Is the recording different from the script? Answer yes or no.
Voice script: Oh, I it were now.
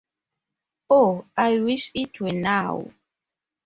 yes